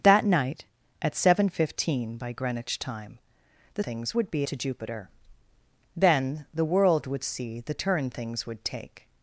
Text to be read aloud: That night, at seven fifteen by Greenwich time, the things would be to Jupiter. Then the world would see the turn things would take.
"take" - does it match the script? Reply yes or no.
yes